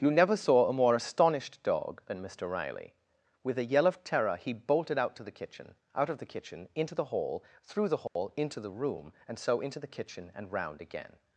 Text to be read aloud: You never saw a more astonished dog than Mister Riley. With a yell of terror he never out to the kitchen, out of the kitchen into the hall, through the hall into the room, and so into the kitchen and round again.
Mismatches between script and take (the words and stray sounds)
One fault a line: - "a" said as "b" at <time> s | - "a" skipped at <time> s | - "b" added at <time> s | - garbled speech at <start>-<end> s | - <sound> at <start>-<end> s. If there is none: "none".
- "never" said as "bolted" at 4.5 s
- dropout at 8.1-8.2 s